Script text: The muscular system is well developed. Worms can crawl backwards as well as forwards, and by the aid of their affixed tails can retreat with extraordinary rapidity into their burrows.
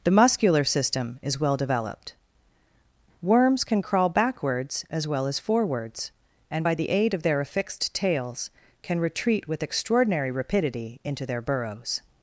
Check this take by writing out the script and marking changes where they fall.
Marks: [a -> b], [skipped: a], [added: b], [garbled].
The muscular system is well developed. Worms can crawl backwards as well as forwards, and by the aid of their affixed tails can retreat with extraordinary rapidity into their burrows.